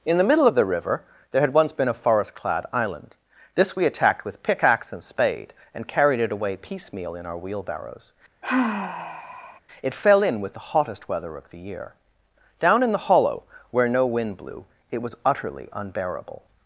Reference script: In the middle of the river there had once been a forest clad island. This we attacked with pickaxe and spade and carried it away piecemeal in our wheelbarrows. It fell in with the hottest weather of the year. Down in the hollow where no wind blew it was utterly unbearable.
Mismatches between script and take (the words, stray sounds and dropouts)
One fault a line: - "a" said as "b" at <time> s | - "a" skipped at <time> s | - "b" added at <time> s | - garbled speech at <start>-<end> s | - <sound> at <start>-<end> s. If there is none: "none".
- sigh at 8.4-9.6 s